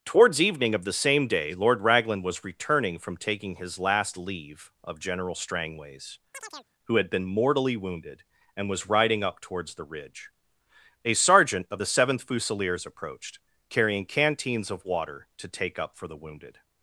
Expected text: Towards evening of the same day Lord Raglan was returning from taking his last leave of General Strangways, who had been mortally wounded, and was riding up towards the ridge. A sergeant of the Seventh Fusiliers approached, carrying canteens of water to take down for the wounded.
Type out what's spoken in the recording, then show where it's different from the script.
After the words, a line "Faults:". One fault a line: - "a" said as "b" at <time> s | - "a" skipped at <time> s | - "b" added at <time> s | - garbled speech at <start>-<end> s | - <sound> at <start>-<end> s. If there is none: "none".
Towards evening of the same day Lord Raglan was returning from taking his last leave of General Strangways, who had been mortally wounded, and was riding up towards the ridge. A sergeant of the Seventh Fusiliers approached, carrying canteens of water to take up for the wounded.
Faults:
- chirp at 6.3-6.7 s
- "down" said as "up" at 15.8 s